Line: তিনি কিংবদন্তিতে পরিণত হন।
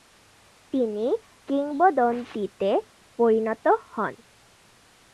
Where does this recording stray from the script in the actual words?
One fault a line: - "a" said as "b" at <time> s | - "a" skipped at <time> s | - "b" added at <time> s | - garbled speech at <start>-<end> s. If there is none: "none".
none